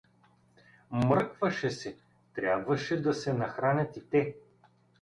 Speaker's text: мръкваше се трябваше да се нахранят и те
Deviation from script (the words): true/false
false